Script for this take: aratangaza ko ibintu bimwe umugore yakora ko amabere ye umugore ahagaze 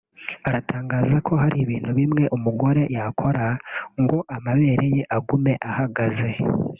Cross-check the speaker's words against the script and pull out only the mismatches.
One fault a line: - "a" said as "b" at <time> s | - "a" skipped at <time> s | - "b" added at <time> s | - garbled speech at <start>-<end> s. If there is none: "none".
- "hari" added at 1.4 s
- "ko" said as "ngo" at 4.0 s
- "umugore" said as "agume" at 5.2 s